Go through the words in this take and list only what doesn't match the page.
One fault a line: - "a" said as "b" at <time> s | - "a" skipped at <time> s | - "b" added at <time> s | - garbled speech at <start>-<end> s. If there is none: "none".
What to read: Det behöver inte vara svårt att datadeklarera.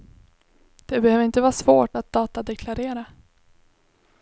none